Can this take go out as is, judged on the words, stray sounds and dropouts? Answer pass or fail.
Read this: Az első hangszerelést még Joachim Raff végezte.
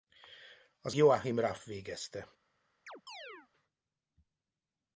fail